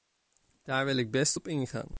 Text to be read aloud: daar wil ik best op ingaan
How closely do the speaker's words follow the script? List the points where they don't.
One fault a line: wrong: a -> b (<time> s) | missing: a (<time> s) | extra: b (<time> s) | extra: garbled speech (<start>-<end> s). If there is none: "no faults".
no faults